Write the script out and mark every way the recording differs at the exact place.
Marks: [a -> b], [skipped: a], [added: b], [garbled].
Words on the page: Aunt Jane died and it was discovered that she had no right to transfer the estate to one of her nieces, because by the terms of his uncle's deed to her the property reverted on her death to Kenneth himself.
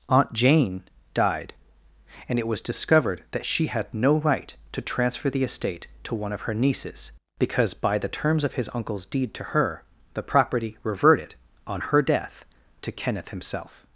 Aunt Jane died and it was discovered that she had no right to transfer the estate to one of her nieces, because by the terms of his uncle's deed to her the property reverted on her death to Kenneth himself.